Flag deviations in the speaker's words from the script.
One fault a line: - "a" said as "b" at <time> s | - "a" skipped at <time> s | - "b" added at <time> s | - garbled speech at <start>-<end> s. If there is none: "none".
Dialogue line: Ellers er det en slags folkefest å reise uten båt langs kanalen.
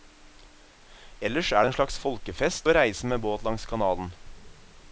- "uten" said as "med" at 3.1 s